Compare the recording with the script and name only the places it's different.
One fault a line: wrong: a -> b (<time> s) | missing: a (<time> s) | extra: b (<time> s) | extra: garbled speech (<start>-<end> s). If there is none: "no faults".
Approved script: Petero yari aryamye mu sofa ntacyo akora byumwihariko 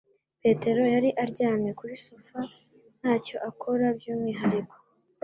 wrong: mu -> kuri (1.8 s)